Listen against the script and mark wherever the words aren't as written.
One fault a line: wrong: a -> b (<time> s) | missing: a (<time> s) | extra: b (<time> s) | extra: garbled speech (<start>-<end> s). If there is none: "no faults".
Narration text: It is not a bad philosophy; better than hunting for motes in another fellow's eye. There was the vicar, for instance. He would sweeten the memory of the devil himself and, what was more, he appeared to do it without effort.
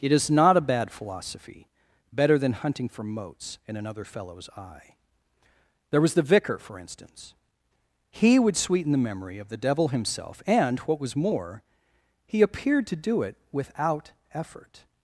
no faults